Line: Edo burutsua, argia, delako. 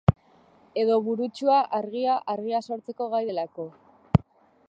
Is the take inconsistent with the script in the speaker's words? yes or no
yes